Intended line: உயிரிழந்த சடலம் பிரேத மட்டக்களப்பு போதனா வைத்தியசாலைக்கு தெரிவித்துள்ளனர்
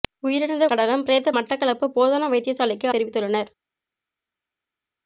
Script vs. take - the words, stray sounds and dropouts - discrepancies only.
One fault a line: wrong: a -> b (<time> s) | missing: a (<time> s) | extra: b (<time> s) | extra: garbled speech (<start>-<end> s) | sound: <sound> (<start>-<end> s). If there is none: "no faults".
no faults